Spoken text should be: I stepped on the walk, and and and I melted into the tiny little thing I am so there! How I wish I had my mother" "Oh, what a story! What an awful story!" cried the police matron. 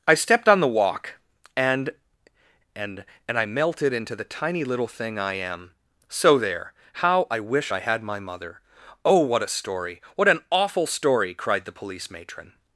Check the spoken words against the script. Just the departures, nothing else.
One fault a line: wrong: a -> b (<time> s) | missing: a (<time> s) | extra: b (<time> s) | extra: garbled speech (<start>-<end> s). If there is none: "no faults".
no faults